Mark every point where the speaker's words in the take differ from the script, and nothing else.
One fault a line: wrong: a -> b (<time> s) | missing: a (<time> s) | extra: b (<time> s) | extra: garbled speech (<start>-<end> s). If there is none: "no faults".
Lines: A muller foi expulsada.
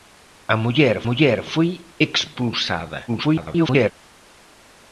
extra: muller (1.1 s)
extra: garbled speech (3.1-3.9 s)